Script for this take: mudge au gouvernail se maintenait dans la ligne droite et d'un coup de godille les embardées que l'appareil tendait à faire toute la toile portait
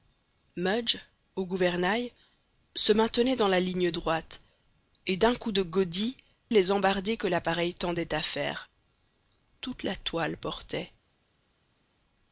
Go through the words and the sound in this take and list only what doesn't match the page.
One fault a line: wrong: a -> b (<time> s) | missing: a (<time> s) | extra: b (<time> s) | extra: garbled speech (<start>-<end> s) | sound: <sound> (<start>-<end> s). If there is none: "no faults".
no faults